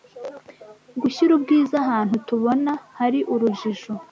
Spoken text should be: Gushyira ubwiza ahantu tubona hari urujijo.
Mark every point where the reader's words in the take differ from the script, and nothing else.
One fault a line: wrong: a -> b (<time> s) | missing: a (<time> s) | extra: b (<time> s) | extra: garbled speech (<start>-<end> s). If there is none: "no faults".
no faults